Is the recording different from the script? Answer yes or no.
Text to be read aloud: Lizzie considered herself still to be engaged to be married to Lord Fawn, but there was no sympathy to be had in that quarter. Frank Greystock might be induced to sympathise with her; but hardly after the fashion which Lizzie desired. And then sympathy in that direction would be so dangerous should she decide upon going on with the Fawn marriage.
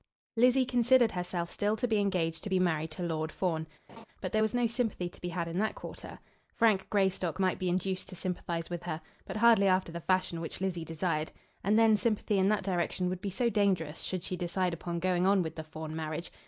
no